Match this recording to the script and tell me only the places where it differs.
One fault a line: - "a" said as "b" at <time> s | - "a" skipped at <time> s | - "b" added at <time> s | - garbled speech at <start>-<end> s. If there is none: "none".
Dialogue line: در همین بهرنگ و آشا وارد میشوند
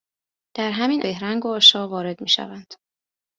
none